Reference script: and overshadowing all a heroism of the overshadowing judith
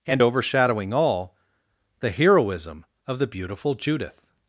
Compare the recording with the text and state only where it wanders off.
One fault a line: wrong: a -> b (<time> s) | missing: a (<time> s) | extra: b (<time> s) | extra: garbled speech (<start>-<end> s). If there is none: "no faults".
wrong: a -> the (2.0 s)
wrong: overshadowing -> beautiful (3.3 s)